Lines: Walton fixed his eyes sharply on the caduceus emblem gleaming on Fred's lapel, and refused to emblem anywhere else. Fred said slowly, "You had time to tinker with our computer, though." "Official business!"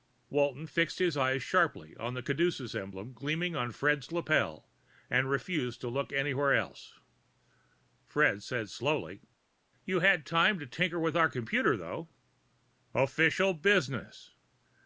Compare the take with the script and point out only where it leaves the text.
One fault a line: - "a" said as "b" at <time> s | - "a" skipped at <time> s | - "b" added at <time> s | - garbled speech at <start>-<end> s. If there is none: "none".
- "emblem" said as "look" at 5.9 s